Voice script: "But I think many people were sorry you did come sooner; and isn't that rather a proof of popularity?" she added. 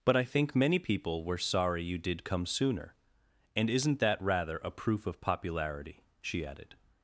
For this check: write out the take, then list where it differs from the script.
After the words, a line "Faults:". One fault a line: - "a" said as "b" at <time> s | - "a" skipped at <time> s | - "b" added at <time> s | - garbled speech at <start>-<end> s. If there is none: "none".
"But I think many people were sorry you did come sooner; and isn't that rather a proof of popularity?" she added.
Faults:
none